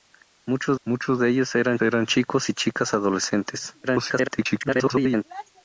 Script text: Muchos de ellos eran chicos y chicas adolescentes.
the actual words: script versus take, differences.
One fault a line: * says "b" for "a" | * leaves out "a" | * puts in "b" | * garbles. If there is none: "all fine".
* puts in "muchos"
* puts in "eran"
* garbles